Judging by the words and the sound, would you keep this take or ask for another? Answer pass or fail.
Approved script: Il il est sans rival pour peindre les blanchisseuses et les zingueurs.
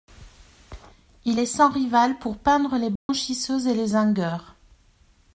fail